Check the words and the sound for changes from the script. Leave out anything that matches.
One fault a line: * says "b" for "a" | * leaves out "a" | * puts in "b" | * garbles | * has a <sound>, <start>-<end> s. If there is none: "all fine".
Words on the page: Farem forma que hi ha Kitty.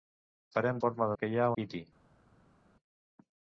all fine